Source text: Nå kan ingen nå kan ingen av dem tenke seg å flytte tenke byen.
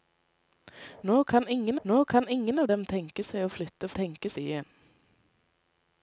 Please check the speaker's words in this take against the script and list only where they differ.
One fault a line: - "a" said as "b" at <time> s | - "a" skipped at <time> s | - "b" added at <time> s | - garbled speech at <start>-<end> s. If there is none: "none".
none